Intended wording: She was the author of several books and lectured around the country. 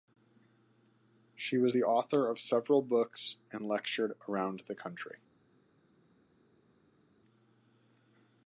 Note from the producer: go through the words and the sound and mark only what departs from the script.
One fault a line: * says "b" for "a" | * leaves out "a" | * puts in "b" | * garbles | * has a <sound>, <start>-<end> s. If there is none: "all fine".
all fine